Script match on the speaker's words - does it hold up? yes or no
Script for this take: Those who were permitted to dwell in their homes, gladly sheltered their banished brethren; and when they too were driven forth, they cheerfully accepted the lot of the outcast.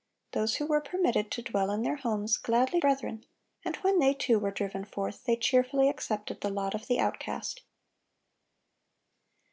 no